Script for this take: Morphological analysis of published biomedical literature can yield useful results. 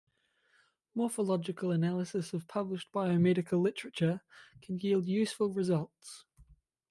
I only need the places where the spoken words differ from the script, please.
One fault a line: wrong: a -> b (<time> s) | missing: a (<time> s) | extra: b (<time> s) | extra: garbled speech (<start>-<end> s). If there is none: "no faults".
no faults